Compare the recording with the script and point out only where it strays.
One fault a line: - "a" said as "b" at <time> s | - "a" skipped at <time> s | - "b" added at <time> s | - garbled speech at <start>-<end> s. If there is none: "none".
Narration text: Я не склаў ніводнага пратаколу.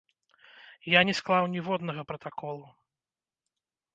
none